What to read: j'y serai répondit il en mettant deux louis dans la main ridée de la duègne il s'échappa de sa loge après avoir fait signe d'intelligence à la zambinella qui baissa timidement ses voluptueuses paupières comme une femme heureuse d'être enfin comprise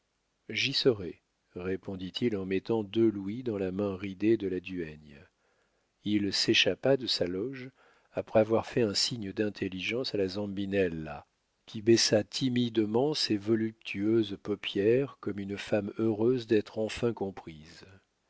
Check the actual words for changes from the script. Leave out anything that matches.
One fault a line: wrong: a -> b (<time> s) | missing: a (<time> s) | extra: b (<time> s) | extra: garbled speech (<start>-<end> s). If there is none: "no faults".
extra: un (8.8 s)